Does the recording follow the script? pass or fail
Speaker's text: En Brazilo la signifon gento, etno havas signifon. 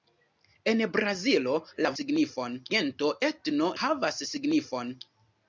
pass